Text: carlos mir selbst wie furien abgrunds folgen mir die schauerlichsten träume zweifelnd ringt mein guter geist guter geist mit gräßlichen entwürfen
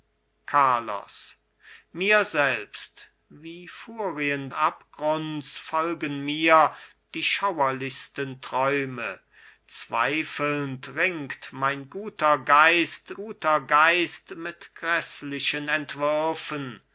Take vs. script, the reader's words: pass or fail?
pass